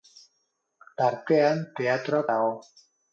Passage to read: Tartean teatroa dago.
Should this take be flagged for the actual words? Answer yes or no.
no